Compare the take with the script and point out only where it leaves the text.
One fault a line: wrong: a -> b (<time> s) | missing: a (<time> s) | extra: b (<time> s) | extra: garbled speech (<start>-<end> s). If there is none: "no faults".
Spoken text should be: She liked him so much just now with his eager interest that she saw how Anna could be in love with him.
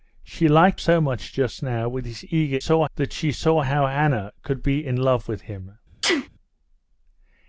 missing: him (0.8 s)
wrong: interest -> saw (2.6 s)